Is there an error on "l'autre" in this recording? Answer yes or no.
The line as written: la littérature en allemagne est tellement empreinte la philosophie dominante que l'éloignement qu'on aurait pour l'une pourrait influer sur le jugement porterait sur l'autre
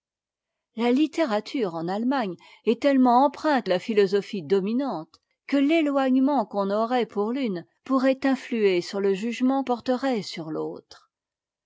no